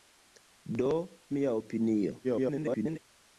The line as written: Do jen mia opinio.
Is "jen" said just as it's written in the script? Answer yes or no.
no